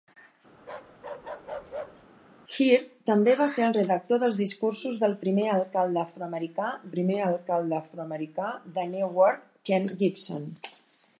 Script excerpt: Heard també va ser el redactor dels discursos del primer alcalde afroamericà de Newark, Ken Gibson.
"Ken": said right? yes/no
yes